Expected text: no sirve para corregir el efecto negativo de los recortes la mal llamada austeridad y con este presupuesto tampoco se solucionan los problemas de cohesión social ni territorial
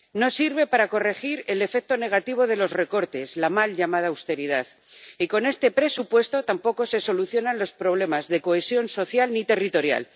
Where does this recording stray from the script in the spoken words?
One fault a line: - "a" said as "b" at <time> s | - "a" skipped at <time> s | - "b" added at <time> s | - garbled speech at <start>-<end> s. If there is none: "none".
none